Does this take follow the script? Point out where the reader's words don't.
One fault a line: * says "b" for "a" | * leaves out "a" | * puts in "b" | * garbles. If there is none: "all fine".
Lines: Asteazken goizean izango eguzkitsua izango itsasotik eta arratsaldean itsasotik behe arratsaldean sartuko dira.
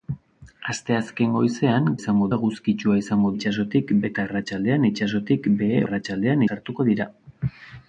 all fine